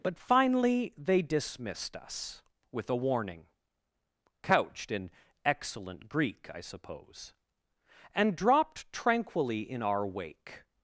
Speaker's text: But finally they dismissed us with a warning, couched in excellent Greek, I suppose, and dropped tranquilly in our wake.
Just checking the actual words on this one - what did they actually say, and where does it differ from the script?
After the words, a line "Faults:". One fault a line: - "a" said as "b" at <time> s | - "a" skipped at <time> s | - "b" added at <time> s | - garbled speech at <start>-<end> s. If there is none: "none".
But finally they dismissed us with a warning, couched in excellent Greek, I suppose, and dropped tranquilly in our wake.
Faults:
none